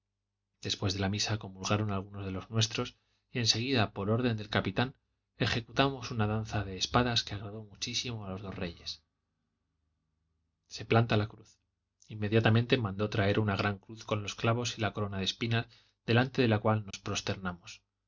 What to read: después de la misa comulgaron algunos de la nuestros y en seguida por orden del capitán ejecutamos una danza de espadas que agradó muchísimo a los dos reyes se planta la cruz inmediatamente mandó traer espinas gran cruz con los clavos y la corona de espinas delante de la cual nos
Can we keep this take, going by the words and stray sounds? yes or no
no